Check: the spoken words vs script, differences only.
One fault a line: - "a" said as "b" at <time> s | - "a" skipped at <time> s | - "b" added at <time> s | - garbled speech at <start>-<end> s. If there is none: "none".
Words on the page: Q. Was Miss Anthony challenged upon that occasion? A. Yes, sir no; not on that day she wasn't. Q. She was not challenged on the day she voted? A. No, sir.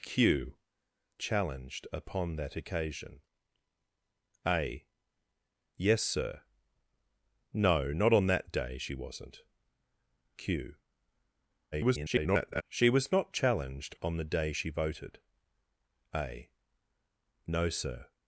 - "Was Miss Anthony" skipped at 0.6 s
- garbled speech at 11.7-12.6 s